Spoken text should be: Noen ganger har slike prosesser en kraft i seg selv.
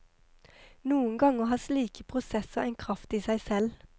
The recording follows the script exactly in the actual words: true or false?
true